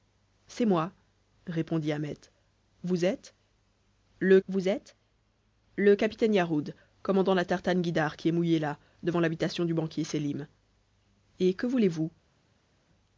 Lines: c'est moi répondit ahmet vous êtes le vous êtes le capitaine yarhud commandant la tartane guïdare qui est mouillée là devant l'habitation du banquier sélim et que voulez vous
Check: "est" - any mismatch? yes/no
no